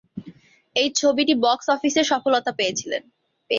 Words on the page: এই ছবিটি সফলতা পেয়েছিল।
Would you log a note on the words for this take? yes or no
yes